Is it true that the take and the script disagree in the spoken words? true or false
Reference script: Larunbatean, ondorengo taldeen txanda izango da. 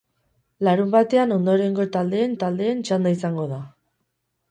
true